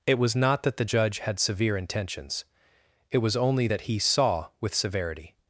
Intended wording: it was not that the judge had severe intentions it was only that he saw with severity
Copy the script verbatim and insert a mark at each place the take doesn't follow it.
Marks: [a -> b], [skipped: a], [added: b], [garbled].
it was not that the judge had severe intentions it was only that he saw with severity